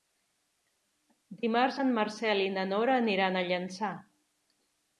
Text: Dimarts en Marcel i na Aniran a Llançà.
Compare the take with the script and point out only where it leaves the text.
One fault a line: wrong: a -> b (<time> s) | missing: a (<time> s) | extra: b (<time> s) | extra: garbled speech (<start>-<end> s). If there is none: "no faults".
extra: Nora (2.8 s)